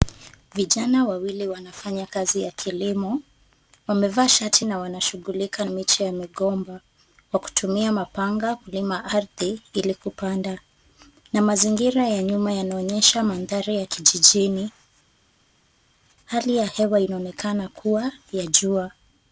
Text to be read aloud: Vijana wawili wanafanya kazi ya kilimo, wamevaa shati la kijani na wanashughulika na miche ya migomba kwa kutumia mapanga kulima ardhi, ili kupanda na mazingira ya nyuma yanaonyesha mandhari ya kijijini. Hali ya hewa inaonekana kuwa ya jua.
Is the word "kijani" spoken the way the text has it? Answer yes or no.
no